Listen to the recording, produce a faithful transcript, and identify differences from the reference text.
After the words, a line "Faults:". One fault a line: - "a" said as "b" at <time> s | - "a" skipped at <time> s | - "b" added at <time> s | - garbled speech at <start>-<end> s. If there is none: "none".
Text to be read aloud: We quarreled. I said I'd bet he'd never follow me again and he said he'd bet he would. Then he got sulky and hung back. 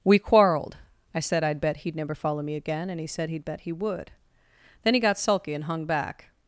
We quarreled. I said I'd bet he'd never follow me again and he said he'd bet he would. Then he got sulky and hung back.
Faults:
none